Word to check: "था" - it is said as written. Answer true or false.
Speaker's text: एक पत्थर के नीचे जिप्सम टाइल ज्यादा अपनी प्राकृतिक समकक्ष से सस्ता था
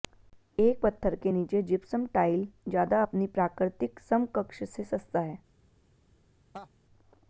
false